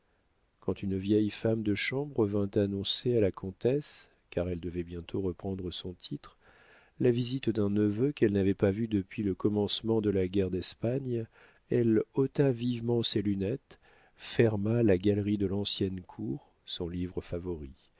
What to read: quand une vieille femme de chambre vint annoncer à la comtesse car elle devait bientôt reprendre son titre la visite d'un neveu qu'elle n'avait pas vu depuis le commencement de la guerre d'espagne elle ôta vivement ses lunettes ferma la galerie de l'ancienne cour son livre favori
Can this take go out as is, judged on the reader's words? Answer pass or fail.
pass